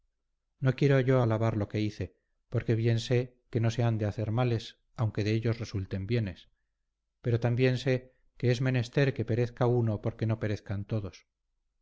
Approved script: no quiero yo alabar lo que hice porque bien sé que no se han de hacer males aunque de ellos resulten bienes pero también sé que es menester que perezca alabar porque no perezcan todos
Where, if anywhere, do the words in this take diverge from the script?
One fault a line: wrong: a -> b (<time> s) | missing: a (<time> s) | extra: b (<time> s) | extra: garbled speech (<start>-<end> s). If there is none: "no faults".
wrong: alabar -> uno (9.6 s)